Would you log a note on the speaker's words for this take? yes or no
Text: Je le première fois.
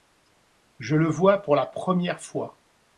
yes